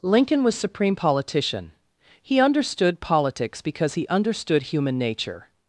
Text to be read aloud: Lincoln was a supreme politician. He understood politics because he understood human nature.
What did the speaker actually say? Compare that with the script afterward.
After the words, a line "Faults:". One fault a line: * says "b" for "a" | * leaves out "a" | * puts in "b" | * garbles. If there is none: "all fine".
Lincoln was supreme politician. He understood politics because he understood human nature.
Faults:
* leaves out "a"